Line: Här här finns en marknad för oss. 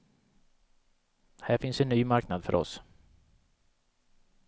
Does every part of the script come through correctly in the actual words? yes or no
no